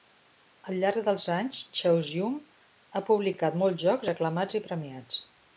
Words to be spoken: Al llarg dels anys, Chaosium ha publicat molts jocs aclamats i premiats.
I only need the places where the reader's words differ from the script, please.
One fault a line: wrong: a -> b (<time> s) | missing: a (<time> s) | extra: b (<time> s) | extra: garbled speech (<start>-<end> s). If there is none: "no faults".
no faults